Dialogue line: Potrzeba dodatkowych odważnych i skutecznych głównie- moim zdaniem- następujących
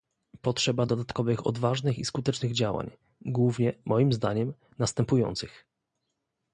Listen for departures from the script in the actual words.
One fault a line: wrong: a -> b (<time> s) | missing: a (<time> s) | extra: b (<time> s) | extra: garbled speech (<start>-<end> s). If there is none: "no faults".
extra: działań (2.5 s)